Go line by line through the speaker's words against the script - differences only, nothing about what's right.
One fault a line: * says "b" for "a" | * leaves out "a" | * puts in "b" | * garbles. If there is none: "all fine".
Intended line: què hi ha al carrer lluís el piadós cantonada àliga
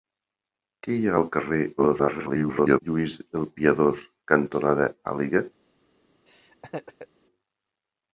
* garbles